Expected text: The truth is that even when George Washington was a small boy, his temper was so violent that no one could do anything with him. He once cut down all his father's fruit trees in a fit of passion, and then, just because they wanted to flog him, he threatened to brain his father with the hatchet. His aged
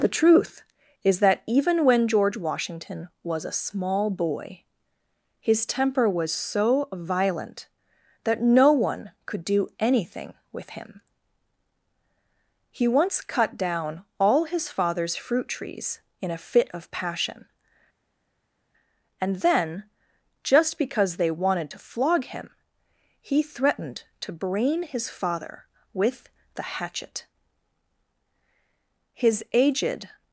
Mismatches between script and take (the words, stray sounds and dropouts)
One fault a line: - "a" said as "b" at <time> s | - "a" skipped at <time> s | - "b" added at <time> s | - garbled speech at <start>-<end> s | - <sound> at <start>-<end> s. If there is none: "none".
none